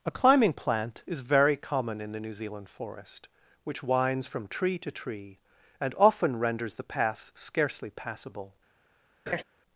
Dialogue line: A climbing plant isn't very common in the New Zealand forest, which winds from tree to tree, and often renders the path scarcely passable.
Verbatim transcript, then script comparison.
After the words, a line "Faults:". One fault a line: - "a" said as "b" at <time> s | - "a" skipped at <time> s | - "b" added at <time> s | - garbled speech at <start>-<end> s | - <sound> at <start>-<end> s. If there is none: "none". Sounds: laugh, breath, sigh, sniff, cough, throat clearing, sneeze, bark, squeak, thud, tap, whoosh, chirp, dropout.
A climbing plant is very common in the New Zealand forest, which winds from tree to tree, and often renders the path scarcely passable.
Faults:
- "isn't" said as "is" at 1.1 s
- laugh at 9.3-9.4 s